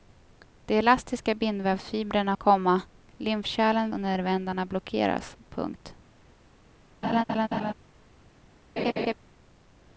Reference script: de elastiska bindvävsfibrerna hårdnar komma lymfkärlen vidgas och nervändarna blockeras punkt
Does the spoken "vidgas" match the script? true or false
false